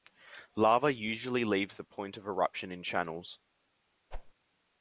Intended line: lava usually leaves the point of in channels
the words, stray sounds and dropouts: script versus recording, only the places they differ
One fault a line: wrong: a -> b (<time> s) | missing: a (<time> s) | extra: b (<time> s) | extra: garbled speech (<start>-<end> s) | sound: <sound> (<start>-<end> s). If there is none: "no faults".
extra: eruption (2.3 s)
sound: whoosh (4.1-4.3 s)